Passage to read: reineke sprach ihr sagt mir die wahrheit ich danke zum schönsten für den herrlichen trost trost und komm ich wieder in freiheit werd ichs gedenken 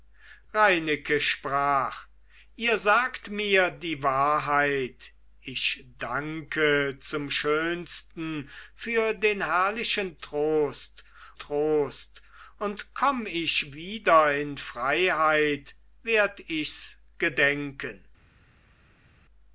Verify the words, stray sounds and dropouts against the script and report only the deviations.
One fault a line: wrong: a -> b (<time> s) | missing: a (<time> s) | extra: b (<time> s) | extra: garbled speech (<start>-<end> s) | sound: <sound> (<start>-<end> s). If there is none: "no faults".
no faults